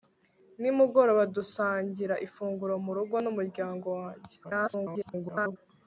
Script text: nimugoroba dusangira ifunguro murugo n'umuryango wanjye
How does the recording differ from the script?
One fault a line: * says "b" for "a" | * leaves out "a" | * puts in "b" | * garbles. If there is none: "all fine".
* garbles